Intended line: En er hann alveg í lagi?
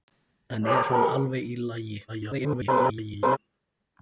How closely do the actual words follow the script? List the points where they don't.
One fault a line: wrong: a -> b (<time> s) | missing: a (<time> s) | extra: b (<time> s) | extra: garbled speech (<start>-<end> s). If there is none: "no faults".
extra: garbled speech (2.1-3.4 s)